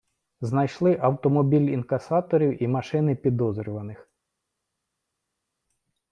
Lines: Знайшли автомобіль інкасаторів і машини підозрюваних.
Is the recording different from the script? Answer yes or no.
no